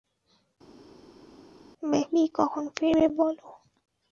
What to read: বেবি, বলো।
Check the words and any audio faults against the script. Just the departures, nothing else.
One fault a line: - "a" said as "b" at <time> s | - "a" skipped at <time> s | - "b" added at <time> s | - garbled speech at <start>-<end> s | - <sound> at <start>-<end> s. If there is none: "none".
- "কখন ফিরবে" added at 2.3 s